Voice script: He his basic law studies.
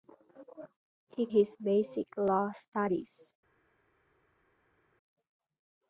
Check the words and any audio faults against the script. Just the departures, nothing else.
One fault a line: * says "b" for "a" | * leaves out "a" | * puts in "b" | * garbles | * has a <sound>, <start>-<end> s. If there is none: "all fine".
all fine